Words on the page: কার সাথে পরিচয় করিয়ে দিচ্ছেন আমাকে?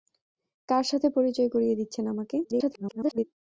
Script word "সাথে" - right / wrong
right